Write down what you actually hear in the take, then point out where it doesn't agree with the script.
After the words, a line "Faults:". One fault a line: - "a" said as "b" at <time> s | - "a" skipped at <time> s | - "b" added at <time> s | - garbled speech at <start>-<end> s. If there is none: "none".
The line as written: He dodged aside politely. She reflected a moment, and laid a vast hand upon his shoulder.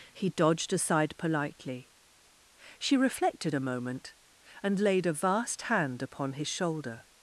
He dodged aside politely. She reflected a moment, and laid a vast hand upon his shoulder.
Faults:
none